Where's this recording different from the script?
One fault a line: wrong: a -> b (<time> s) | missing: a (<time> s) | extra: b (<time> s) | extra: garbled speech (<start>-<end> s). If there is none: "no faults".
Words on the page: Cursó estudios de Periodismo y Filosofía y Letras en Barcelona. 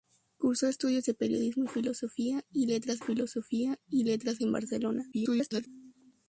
extra: Filosofía y Letras (3.0 s)
extra: garbled speech (5.1-5.7 s)